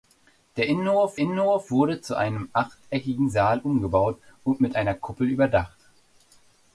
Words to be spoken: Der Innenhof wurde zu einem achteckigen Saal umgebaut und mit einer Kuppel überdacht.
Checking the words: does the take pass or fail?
fail